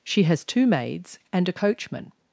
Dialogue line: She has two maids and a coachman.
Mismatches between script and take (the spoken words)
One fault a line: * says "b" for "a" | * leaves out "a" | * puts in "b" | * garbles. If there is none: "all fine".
all fine